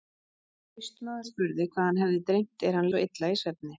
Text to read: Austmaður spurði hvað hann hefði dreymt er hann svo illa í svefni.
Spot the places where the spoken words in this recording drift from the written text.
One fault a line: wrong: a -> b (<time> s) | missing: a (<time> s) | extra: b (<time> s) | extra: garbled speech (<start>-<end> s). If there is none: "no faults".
no faults